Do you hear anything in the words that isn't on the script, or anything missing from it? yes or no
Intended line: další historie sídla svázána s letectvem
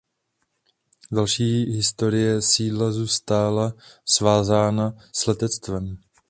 yes